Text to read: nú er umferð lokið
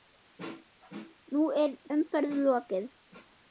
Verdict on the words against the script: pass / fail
pass